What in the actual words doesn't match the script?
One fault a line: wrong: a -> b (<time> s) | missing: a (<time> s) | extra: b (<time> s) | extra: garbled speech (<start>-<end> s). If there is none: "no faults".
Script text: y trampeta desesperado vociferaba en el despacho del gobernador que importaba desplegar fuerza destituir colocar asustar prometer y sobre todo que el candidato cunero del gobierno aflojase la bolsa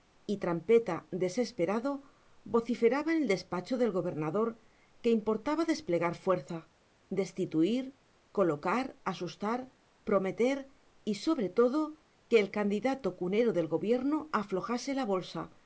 no faults